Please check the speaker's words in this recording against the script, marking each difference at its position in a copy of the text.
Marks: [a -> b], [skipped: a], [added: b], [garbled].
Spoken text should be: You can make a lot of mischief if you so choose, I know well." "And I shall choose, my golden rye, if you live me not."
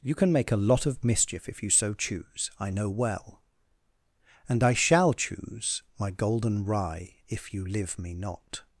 You can make a lot of mischief if you so choose, I know well." "And I shall choose, my golden rye, if you live me not."